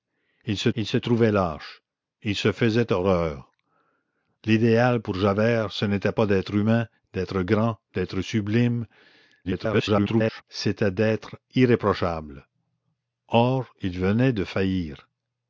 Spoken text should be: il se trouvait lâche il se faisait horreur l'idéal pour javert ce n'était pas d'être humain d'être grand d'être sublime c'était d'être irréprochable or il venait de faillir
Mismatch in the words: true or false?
true